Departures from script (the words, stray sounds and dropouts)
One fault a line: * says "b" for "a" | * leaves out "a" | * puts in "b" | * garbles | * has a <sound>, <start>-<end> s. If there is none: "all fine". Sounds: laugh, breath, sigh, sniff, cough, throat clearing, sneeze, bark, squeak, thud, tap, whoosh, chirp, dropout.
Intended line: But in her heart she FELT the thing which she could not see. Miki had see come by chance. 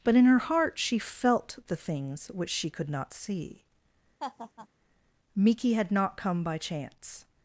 * says "things" for "thing"
* has a laugh, 4.2-4.7 s
* says "not" for "see"